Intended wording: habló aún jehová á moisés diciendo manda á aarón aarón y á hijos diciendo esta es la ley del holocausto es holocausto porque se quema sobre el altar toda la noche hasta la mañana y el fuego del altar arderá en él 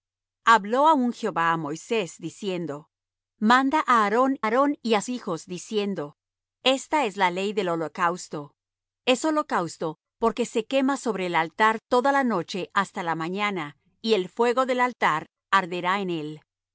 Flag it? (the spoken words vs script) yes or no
no